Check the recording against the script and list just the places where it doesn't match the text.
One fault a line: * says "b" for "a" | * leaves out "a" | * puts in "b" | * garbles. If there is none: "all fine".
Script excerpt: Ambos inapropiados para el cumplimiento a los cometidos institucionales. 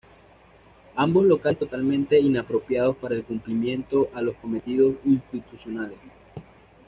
* puts in "locales totalmente"